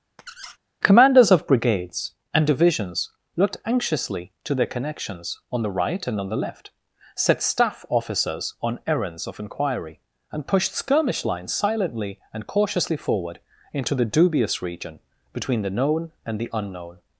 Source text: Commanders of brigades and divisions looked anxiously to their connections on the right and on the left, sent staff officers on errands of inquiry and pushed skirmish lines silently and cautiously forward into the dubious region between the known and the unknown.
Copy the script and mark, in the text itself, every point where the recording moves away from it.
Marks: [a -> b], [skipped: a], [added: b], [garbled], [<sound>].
[squeak] Commanders of brigades and divisions looked anxiously to their connections on the right and on the left, [sent -> set] staff officers on errands of inquiry and pushed skirmish lines silently and cautiously forward into the dubious region between the known and the unknown.